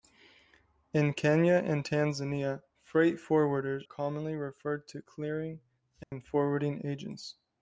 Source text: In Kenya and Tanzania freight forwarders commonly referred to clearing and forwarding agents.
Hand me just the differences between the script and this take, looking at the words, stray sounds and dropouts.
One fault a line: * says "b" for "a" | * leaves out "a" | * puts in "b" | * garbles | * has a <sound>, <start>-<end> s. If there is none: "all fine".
* has a dropout, 6.0-6.1 s